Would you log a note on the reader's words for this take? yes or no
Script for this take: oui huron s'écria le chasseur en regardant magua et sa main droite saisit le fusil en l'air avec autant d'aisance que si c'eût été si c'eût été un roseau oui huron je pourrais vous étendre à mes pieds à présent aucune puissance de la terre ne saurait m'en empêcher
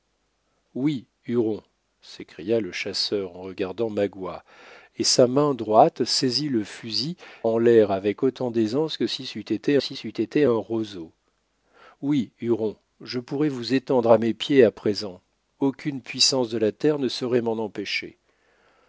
no